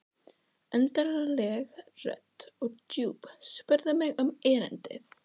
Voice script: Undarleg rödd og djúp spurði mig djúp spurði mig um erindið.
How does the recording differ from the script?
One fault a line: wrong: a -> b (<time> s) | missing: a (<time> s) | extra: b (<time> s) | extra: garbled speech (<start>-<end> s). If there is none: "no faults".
missing: djúp spurði mig (4.2 s)